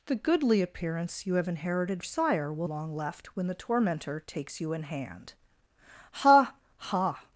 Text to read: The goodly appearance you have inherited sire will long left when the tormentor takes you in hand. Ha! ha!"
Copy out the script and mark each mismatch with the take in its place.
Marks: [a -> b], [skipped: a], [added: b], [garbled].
The goodly appearance you have inherited sire will long left when the tormentor takes you in hand. Ha! ha!"